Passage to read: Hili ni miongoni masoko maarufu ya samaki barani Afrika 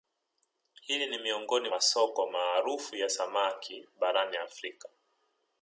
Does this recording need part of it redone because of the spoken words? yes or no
no